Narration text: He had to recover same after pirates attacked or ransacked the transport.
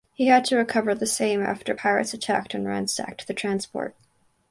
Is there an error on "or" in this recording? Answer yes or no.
yes